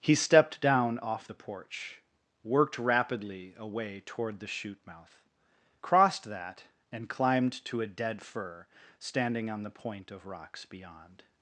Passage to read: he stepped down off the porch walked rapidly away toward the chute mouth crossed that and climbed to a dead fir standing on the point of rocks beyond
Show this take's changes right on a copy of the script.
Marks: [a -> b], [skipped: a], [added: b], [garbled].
he stepped down off the porch [walked -> worked] rapidly away toward the chute mouth crossed that and climbed to a dead fir standing on the point of rocks beyond